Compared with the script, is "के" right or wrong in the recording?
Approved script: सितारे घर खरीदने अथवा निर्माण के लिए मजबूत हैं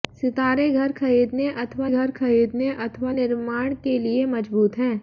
right